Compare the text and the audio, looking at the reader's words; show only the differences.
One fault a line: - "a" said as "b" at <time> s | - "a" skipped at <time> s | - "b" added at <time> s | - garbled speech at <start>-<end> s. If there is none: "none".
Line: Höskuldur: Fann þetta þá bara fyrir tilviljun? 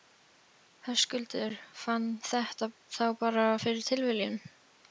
none